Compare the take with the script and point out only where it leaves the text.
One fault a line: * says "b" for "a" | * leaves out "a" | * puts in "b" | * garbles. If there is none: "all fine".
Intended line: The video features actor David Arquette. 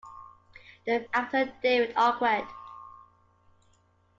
* leaves out "video features"